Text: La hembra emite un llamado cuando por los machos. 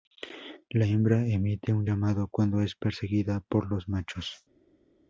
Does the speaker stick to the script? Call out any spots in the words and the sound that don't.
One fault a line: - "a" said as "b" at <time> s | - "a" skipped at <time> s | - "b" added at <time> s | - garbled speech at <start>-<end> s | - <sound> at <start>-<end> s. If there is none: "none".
- "es perseguida" added at 2.6 s